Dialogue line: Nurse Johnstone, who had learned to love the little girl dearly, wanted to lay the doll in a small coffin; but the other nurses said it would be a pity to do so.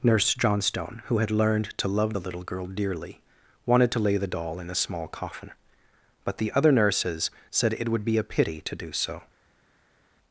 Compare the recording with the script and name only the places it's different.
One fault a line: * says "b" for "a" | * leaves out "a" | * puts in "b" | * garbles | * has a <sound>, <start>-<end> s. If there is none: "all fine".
all fine